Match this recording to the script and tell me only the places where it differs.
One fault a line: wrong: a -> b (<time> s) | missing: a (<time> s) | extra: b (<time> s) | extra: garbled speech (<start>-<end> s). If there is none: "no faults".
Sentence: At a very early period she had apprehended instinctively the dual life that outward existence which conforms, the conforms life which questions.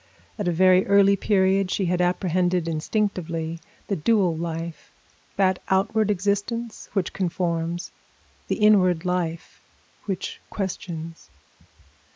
wrong: conforms -> inward (8.5 s)